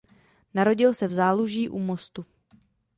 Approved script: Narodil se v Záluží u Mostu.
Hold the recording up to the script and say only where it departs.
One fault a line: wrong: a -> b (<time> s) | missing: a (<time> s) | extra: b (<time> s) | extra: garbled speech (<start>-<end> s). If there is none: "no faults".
no faults